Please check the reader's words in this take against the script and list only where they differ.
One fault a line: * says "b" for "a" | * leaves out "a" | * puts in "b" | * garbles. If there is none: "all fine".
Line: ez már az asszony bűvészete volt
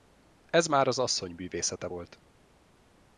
all fine